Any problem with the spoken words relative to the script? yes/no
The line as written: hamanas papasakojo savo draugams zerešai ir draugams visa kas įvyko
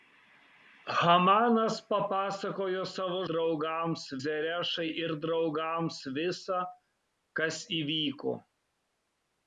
no